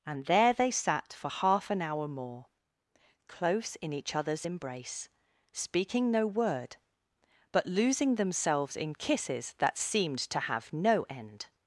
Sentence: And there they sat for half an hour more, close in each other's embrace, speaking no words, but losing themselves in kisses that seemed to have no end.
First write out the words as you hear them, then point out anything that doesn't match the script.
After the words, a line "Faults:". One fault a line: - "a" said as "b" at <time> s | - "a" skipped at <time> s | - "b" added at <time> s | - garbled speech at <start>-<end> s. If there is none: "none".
And there they sat for half an hour more, close in each other's embrace, speaking no word, but losing themselves in kisses that seemed to have no end.
Faults:
- "words" said as "word" at 6.3 s